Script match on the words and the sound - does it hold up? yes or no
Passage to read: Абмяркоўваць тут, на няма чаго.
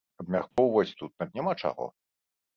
no